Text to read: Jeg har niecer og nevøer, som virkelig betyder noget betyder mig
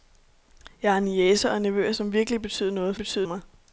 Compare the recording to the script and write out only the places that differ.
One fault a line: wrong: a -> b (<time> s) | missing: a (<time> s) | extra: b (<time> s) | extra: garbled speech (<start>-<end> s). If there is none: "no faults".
no faults